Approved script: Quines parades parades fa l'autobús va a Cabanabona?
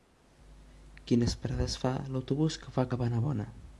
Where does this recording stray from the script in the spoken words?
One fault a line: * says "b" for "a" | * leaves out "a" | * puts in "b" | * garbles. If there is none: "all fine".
* leaves out "parades"
* puts in "que"